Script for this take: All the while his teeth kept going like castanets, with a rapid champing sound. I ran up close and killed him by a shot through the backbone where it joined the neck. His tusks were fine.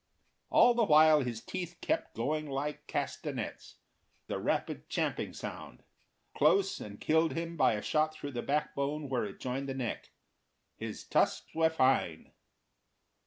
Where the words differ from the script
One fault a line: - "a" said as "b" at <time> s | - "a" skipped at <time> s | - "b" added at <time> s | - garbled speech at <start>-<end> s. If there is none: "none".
- "with" skipped at 3.8 s
- "I ran up" skipped at 5.8 s